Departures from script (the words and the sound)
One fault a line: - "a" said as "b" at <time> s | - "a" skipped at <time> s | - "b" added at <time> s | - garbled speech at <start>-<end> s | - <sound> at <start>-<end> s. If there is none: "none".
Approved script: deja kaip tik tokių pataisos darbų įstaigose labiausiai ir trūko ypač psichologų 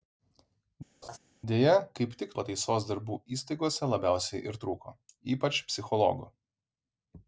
- laugh at 1.0-1.2 s
- "tokių" skipped at 2.4 s